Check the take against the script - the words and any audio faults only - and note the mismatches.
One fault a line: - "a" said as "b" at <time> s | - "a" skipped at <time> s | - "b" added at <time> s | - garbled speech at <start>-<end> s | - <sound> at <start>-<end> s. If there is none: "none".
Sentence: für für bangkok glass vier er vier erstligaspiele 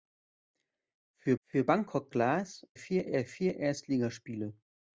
none